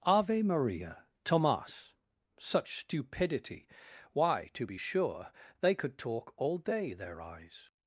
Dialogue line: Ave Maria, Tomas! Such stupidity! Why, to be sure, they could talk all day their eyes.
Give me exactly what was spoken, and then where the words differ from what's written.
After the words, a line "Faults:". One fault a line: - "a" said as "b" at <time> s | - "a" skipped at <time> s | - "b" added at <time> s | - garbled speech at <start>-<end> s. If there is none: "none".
Ave Maria, Tomas! Such stupidity! Why, to be sure, they could talk all day their eyes.
Faults:
none